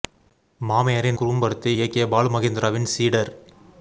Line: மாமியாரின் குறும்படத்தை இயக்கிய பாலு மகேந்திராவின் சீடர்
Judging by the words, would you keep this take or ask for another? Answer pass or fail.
pass